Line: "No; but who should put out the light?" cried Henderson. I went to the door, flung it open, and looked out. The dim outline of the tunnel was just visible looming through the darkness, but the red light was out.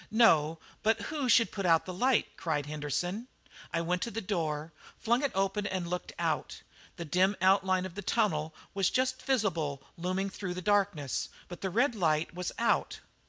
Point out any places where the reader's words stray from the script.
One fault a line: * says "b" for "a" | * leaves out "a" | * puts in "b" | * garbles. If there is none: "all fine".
all fine